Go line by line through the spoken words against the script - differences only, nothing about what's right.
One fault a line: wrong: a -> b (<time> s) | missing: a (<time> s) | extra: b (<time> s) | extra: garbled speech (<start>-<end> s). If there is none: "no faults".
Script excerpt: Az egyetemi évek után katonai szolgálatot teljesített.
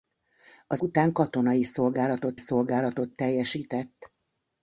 missing: egyetemi évek (0.8 s)
extra: szolgálatot (2.4 s)